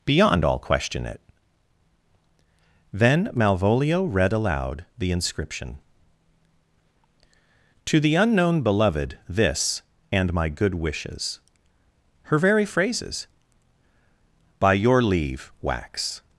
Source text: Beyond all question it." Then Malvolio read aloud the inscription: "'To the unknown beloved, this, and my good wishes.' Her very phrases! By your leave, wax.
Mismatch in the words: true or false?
false